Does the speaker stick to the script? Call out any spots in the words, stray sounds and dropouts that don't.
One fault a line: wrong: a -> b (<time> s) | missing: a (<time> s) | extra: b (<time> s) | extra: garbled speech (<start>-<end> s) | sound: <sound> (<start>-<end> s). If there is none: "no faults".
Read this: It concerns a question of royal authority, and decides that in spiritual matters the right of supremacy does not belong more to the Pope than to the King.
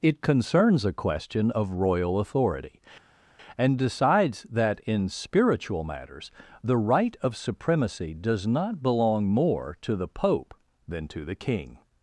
no faults